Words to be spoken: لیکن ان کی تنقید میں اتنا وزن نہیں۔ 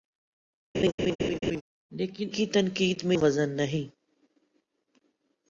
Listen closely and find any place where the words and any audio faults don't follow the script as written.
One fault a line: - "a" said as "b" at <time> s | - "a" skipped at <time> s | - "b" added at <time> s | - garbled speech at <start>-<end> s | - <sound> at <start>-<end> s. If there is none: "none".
- laugh at 0.7-1.6 s
- "ان" skipped at 2.3 s
- "اتنا" skipped at 3.2 s